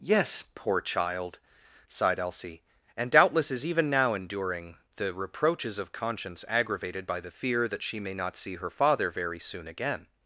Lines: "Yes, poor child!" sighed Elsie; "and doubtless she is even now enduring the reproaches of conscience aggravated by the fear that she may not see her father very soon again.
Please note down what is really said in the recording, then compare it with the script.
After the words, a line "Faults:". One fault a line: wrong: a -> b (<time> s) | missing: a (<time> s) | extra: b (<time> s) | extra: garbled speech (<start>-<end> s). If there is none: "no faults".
"Yes, poor child!" sighed Elsie; "and doubtless is even now enduring the reproaches of conscience aggravated by the fear that she may not see her father very soon again.
Faults:
missing: she (3.5 s)